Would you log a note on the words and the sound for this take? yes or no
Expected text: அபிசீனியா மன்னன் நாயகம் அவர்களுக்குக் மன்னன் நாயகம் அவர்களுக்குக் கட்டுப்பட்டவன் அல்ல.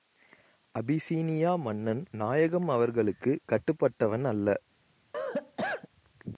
yes